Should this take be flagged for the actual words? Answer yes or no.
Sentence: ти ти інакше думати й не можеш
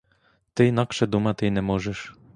yes